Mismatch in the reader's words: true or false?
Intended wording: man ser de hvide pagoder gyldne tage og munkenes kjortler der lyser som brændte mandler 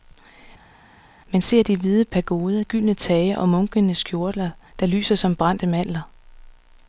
false